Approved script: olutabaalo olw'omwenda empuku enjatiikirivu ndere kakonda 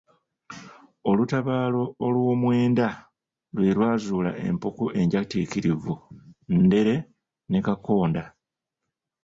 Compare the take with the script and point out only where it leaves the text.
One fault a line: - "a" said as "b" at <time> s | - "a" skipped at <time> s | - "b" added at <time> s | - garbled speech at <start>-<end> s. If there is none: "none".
- "lwe lwazuula" added at 3.6 s
- "ne" added at 7.5 s